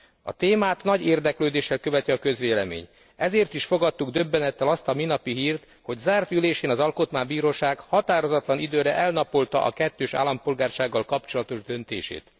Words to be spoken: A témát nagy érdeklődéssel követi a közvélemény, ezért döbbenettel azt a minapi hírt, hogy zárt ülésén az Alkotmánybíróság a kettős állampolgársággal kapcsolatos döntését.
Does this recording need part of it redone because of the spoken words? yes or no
yes